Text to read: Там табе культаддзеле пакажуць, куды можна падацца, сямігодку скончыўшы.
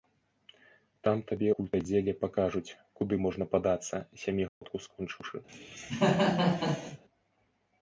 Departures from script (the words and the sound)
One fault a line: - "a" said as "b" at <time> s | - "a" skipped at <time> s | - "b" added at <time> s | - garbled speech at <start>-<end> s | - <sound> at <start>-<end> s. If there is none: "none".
- dropout at 4.5-4.6 s
- cough at 5.5-7.0 s